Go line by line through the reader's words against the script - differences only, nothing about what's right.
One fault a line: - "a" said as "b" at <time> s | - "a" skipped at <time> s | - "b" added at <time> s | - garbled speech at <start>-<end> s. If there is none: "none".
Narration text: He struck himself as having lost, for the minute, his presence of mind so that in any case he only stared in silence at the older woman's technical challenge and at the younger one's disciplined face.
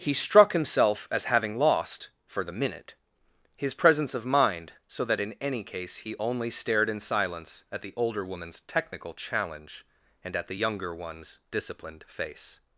none